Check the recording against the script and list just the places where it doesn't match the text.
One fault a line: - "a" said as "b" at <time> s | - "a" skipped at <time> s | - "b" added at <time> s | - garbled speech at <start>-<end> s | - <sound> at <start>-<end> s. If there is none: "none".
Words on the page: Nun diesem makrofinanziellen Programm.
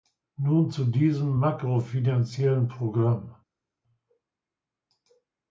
- "zu" added at 0.7 s